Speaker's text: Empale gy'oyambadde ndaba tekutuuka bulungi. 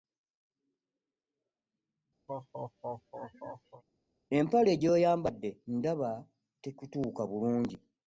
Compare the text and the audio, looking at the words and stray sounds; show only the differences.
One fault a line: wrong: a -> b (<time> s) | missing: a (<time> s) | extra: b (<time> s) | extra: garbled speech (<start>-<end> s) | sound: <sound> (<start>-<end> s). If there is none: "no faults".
sound: laugh (2.3-3.8 s)